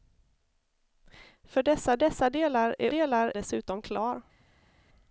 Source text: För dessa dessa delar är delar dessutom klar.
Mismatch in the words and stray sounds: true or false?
false